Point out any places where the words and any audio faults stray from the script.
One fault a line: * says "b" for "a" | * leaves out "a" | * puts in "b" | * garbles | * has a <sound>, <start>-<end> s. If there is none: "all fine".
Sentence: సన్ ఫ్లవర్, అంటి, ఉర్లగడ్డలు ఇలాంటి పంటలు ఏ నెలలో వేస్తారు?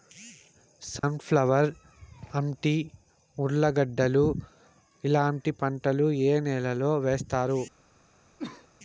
* has a dropout, 1.0-1.0 s
* has a cough, 8.4-8.7 s